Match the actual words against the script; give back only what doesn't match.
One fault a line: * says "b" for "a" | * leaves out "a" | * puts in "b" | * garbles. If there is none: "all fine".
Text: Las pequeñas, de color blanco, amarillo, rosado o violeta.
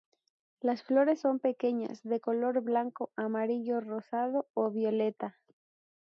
* puts in "flores son"